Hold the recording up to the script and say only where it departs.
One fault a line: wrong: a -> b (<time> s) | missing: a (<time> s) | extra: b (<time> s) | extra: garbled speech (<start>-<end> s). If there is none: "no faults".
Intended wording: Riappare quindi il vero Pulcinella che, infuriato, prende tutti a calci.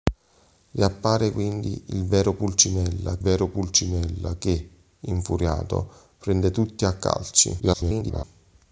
extra: vero Pulcinella (3.2 s)
extra: garbled speech (7.6-8.2 s)